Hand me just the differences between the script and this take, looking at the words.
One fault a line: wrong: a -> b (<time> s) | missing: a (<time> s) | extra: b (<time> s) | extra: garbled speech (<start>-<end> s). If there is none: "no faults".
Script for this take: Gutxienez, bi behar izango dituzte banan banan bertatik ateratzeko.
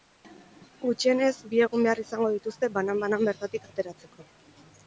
extra: egun (1.7 s)